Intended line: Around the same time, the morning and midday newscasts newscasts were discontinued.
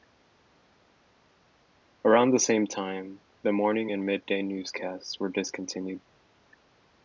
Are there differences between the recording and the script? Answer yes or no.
yes